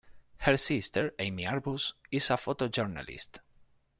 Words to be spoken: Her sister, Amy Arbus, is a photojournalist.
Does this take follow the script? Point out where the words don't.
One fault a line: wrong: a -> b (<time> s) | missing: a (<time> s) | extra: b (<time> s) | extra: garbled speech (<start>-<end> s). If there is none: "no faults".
no faults